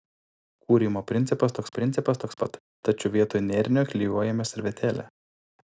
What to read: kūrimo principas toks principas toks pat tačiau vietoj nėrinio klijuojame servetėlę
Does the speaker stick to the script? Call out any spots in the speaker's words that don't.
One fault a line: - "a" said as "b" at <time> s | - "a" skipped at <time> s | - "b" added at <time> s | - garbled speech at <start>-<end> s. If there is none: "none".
none